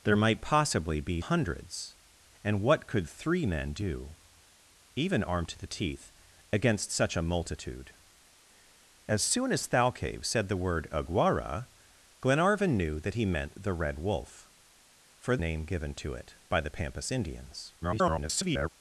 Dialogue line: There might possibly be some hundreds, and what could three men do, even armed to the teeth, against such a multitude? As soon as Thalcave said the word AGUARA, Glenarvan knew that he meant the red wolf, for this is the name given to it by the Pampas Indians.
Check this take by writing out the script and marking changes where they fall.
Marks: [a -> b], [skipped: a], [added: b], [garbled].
There might possibly be [skipped: some] hundreds, and what could three men do, even armed to the teeth, against such a multitude? As soon as Thalcave said the word AGUARA, Glenarvan knew that he meant the red wolf, for [skipped: this is the] name given to it by the Pampas Indians. [garbled]